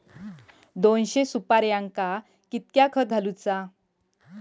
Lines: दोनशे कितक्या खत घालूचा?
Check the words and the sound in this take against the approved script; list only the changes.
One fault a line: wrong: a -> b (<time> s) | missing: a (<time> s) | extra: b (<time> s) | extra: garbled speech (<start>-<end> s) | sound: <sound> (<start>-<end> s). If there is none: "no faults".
extra: सुपार्यांका (1.2 s)